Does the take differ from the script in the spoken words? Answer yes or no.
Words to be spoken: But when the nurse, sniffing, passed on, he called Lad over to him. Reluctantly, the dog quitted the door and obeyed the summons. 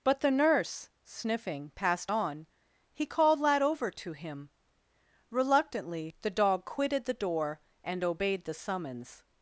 yes